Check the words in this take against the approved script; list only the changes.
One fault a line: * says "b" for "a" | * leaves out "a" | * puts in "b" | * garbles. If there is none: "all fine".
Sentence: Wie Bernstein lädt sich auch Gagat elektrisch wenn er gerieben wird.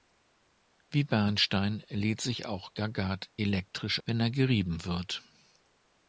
all fine